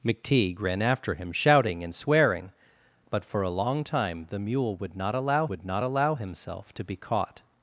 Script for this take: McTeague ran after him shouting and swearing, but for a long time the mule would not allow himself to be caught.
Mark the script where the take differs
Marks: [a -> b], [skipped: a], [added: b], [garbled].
McTeague ran after him shouting and swearing, but for a long time the mule would not allow [added: would not allow] himself to be caught.